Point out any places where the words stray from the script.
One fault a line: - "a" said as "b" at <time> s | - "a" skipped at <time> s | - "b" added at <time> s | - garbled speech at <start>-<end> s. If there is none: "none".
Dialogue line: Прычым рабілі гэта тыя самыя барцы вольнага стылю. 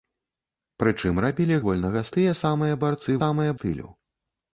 - "гэта" said as "вольнага" at 1.7 s
- "вольнага" said as "самыя" at 3.2 s